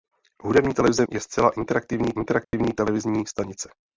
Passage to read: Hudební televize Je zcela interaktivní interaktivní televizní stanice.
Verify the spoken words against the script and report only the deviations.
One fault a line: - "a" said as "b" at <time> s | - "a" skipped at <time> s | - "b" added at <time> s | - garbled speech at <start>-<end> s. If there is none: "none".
none